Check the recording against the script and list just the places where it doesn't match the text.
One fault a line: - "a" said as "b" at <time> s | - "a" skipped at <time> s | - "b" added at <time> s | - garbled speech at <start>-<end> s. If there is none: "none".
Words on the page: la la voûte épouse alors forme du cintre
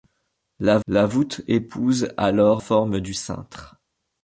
none